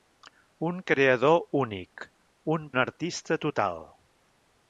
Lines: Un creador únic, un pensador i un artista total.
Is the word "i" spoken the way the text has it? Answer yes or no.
no